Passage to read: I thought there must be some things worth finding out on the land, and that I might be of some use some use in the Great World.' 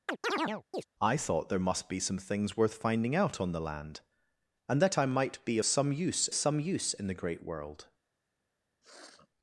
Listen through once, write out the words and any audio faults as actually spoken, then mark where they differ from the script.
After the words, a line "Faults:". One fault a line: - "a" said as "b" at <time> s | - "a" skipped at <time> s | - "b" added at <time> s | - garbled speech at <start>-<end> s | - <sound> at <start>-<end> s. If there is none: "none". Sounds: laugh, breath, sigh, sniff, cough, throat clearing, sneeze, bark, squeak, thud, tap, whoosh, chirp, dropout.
I thought there must be some things worth finding out on the land, and that I might be of some use some use in the Great World.'
Faults:
- chirp at 0.1-0.8 s
- sniff at 8.8-9.3 s